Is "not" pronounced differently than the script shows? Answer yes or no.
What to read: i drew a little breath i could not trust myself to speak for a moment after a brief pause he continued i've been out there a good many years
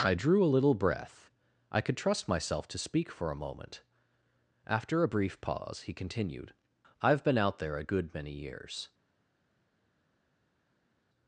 yes